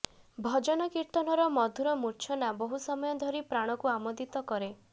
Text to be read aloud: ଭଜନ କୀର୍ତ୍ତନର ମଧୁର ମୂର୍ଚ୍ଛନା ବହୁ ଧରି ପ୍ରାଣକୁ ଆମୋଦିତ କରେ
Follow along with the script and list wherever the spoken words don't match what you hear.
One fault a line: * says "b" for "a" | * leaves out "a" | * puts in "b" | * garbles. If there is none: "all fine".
* puts in "ସମୟ"